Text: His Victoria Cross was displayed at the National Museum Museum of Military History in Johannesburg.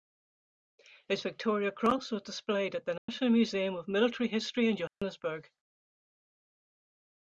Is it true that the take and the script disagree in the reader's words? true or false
true